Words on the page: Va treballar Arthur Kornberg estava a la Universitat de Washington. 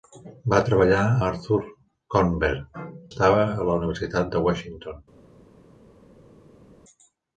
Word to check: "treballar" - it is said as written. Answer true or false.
true